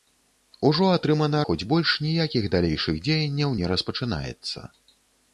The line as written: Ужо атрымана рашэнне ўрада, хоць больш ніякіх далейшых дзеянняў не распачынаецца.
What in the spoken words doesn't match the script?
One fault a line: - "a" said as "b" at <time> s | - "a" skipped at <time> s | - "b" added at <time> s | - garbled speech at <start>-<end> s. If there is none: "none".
- "рашэнне ўрада" skipped at 1.4 s